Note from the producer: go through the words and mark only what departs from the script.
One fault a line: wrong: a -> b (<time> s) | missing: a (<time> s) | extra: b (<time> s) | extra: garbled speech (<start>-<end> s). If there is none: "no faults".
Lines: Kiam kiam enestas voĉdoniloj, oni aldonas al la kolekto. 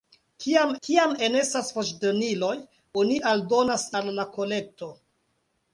no faults